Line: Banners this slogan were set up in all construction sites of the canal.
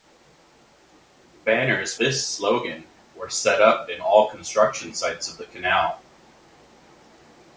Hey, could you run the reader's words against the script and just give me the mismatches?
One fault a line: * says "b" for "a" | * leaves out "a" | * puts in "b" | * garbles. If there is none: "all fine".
all fine